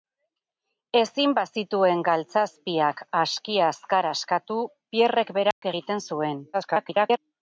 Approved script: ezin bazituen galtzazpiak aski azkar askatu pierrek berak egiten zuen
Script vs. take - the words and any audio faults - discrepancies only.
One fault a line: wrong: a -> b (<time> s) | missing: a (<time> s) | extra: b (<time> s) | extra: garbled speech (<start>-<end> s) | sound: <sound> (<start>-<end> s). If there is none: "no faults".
sound: dropout (5.5-5.6 s)
extra: garbled speech (6.5-7.2 s)